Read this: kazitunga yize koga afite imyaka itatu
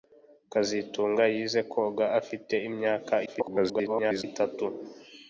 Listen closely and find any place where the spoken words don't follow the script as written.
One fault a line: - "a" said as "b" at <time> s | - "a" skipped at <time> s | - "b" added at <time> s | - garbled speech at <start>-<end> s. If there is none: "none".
- garbled speech at 3.3-4.2 s